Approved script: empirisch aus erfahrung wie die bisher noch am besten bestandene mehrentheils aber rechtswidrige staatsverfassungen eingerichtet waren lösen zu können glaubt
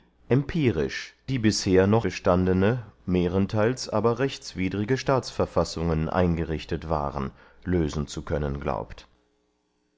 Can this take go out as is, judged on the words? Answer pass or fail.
fail